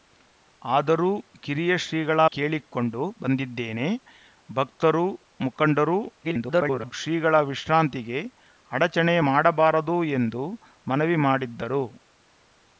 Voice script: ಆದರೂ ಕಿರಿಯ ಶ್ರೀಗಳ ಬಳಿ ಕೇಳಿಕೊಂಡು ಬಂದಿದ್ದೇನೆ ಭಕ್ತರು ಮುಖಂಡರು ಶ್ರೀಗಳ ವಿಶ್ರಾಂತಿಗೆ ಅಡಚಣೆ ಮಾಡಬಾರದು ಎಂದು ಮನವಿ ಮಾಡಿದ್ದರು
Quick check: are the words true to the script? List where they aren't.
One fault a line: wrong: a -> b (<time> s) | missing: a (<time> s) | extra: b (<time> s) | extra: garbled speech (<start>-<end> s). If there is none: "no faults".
missing: ಬಳಿ (2.2 s)
extra: garbled speech (6.2-6.9 s)